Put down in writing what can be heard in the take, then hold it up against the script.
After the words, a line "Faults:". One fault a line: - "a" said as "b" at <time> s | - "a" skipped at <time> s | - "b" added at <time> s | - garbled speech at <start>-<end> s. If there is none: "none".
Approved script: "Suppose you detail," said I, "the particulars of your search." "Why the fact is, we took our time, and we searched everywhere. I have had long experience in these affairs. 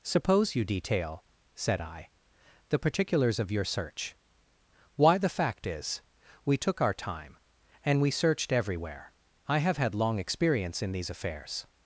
"Suppose you detail," said I, "the particulars of your search." "Why the fact is, we took our time, and we searched everywhere. I have had long experience in these affairs.
Faults:
none